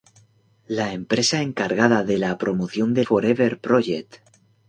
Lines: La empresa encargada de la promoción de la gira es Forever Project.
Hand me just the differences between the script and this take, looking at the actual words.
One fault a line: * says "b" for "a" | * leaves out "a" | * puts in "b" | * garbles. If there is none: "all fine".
* leaves out "la gira es"